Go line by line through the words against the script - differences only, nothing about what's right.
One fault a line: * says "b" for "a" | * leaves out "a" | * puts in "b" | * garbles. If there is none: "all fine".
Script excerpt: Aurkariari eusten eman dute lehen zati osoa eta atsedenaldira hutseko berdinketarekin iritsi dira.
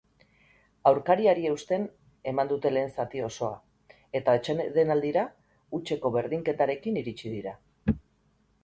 all fine